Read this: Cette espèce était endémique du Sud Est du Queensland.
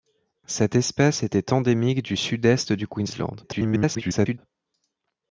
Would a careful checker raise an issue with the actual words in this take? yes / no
yes